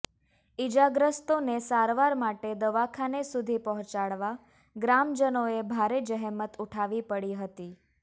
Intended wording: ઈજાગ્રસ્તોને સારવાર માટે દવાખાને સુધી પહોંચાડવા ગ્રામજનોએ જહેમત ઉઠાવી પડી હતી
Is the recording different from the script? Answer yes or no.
yes